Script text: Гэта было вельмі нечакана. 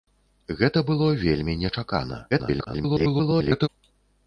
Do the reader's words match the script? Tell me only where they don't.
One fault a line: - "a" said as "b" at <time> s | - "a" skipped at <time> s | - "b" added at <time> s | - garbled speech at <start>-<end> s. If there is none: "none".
- garbled speech at 2.3-3.7 s